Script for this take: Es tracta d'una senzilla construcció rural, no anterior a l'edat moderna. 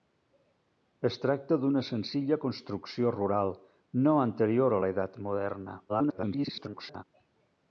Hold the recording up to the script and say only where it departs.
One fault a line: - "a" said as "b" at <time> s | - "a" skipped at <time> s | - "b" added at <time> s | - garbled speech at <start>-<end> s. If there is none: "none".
- garbled speech at 5.9-7.0 s